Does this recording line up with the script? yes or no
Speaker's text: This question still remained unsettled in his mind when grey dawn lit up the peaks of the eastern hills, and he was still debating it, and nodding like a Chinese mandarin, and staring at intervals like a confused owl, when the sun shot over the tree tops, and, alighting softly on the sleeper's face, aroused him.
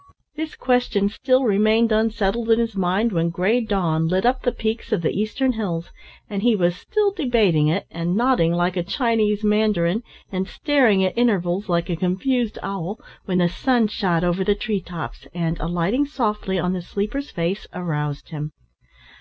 yes